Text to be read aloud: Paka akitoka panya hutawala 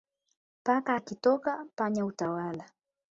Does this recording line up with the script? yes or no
yes